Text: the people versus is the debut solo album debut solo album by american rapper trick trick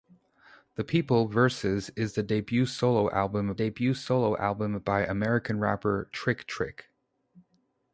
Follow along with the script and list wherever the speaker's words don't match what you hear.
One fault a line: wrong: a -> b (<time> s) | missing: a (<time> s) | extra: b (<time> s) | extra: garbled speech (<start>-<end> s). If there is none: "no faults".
no faults